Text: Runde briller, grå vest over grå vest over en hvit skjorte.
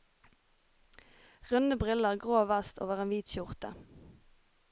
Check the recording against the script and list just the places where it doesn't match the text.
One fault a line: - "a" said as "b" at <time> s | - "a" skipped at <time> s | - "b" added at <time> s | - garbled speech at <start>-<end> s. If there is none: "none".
- "grå vest over" skipped at 3.0 s